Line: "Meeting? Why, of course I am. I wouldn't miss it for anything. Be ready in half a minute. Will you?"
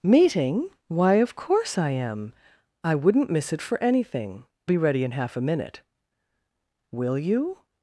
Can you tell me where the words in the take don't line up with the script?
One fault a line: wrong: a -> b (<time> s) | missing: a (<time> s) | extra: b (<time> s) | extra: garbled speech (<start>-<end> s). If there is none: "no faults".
no faults